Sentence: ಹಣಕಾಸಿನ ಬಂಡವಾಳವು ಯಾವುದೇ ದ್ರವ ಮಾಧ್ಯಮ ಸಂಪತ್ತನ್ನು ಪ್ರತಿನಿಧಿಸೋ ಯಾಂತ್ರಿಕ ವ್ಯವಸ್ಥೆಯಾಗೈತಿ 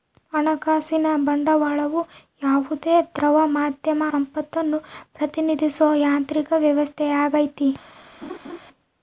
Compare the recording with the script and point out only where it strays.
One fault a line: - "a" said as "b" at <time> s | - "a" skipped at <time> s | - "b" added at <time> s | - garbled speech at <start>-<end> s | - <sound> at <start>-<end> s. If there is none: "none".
- laugh at 8.2-8.6 s